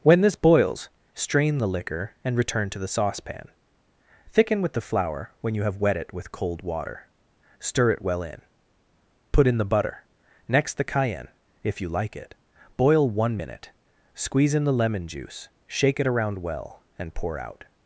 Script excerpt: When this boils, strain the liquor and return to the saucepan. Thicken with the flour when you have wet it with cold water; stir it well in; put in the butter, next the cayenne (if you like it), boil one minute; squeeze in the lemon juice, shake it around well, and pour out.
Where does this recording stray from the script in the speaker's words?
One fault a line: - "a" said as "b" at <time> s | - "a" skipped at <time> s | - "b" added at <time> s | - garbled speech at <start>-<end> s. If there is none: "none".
none